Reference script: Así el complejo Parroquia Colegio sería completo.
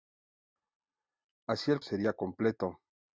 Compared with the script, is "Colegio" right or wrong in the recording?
wrong